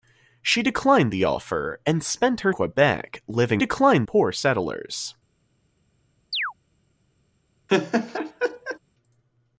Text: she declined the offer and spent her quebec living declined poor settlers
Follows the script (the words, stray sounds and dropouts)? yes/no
no